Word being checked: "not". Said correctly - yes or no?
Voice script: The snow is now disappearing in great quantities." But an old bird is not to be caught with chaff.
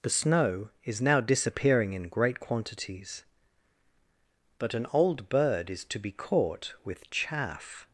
no